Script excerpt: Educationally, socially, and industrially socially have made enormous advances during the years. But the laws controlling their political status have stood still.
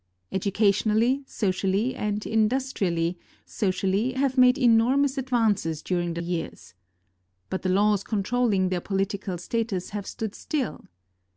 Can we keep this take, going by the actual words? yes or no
yes